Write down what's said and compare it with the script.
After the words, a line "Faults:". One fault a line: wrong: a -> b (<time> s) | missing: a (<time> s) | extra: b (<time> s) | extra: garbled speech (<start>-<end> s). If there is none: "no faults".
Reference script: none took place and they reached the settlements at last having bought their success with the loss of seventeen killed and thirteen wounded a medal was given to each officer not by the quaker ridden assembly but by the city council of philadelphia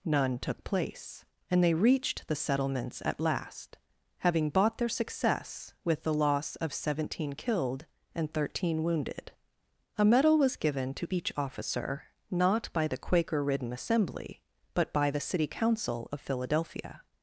none took place and they reached the settlements at last having bought their success with the loss of seventeen killed and thirteen wounded a medal was given to each officer not by the quaker ridden assembly but by the city council of philadelphia
Faults:
no faults